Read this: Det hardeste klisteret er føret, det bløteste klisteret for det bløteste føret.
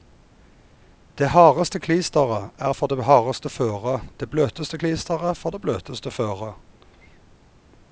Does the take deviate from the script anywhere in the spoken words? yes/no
yes